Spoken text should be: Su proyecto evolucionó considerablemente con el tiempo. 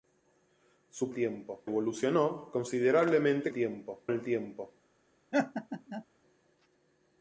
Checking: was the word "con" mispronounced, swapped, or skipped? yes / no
yes